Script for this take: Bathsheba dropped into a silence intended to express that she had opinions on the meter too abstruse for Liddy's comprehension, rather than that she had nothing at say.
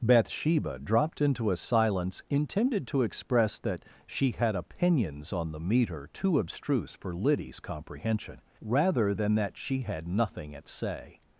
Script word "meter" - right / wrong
right